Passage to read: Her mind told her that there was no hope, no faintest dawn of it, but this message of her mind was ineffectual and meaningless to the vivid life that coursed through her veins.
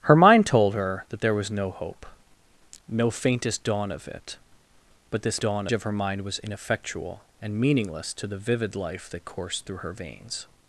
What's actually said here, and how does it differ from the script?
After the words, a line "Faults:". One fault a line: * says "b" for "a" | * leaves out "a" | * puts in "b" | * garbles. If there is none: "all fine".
Her mind told her that there was no hope, no faintest dawn of it, but this dawn of her mind was ineffectual and meaningless to the vivid life that coursed through her veins.
Faults:
* says "dawn" for "message"